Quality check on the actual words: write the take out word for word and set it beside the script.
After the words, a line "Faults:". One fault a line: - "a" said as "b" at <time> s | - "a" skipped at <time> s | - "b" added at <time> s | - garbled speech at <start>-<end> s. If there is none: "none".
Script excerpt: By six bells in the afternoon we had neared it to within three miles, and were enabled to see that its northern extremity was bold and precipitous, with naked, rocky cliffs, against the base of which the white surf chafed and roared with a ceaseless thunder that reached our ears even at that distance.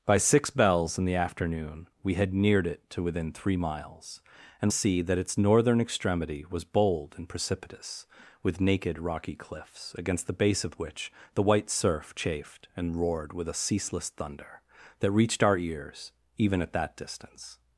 By six bells in the afternoon we had neared it to within three miles, and see that its northern extremity was bold and precipitous, with naked, rocky cliffs, against the base of which the white surf chafed and roared with a ceaseless thunder that reached our ears even at that distance.
Faults:
- "were enabled to" skipped at 4.7 s